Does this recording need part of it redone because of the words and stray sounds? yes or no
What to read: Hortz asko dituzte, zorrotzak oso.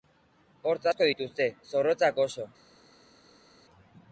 no